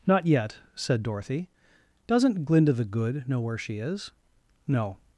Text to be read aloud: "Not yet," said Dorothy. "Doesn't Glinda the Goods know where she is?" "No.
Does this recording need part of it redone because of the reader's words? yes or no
yes